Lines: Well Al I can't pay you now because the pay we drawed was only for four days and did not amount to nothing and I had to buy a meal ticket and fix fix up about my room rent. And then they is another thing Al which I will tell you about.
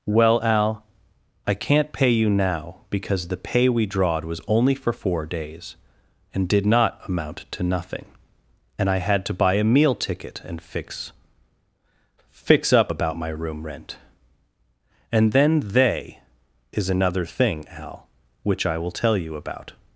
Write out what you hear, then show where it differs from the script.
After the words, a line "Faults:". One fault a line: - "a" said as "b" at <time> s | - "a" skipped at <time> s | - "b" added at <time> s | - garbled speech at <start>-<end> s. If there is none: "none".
Well Al I can't pay you now because the pay we drawed was only for four days and did not amount to nothing and I had to buy a meal ticket and fix fix up about my room rent. And then they is another thing Al which I will tell you about.
Faults:
none